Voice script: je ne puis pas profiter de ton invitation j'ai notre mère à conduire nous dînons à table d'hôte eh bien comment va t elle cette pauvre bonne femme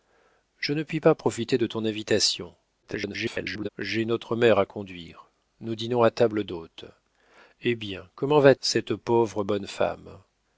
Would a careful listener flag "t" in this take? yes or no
yes